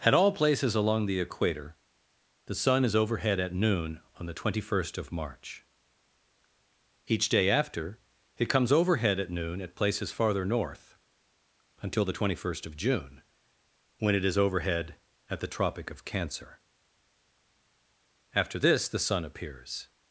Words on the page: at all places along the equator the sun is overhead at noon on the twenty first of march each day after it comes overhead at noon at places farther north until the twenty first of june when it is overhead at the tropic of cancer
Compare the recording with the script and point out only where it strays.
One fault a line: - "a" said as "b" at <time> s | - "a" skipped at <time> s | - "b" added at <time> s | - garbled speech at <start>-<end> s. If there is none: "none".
- "after this the sun appears" added at 18.3 s